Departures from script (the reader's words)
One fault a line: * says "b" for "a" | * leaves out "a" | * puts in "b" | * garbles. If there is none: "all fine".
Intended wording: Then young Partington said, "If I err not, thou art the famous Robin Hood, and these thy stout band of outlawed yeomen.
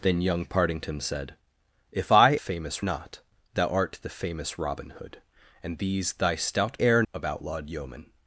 * says "famous" for "err"
* says "err" for "band"